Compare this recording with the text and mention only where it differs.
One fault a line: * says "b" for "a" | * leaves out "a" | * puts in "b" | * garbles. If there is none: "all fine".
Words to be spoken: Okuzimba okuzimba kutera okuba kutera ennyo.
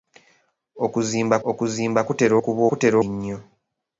all fine